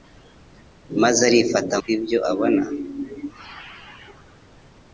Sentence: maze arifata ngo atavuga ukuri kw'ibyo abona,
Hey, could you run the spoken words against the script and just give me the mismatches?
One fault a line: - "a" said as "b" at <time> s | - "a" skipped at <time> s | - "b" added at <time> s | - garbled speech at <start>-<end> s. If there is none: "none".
- "ngo atavuga ukuri" skipped at 1.8 s